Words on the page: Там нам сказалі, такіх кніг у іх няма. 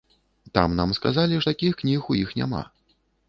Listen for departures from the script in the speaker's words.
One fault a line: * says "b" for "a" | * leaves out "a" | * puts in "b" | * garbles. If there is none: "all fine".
all fine